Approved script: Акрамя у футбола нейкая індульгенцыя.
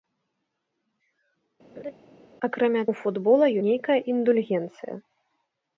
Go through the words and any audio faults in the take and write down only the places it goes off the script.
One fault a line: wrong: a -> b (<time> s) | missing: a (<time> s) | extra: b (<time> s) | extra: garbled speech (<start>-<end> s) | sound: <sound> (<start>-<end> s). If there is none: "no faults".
sound: laugh (1.8-1.9 s)